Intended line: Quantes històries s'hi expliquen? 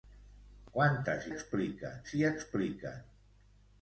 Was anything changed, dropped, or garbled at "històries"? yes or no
yes